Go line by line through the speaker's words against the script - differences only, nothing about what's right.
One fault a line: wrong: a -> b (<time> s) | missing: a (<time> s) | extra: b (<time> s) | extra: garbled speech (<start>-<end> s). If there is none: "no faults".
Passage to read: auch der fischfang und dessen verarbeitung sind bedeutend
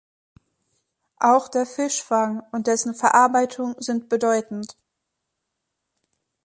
no faults